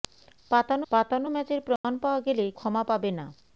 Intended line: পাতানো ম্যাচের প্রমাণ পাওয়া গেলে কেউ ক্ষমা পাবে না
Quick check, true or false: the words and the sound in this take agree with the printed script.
false